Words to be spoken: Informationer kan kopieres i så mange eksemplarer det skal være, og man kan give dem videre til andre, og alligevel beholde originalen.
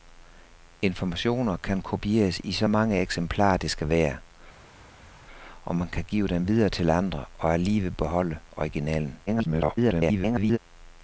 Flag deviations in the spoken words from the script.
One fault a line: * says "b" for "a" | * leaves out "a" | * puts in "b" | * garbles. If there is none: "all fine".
* garbles